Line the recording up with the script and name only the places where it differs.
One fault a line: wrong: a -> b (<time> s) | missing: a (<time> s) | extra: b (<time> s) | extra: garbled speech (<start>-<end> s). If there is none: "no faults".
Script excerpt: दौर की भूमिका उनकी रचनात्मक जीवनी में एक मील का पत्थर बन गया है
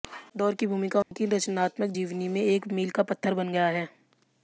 no faults